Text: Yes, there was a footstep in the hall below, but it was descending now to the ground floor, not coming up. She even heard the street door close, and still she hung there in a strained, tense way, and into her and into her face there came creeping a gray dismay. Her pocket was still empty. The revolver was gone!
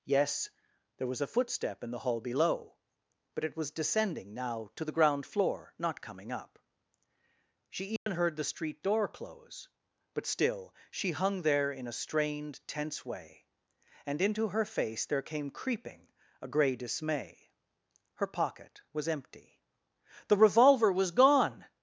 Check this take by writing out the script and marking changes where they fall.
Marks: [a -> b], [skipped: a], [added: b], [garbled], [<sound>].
Yes, there was a footstep in the hall below, but it was descending now to the ground floor, not coming up. She even [dropout] heard the street door close, [and -> but] still she hung there in a strained, tense way, and into her [skipped: and into her] face there came creeping a gray dismay. Her pocket was [skipped: still] empty. The revolver was gone!